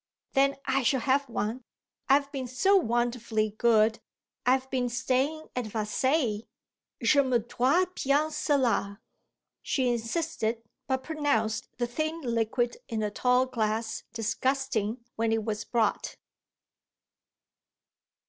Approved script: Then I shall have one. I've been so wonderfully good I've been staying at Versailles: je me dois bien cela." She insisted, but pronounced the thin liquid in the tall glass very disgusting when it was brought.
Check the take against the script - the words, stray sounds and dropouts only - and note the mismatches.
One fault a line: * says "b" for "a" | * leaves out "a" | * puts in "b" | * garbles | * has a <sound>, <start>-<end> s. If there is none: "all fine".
* leaves out "very"